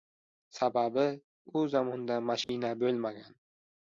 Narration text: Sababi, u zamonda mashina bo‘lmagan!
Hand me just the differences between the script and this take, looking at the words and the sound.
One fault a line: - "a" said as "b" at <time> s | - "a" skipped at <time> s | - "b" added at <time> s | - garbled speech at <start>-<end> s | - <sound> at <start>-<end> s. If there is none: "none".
- dropout at 2.4-2.5 s